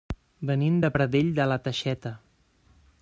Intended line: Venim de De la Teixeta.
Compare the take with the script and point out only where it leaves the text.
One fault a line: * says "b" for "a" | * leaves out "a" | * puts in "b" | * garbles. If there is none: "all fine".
* puts in "Pradell"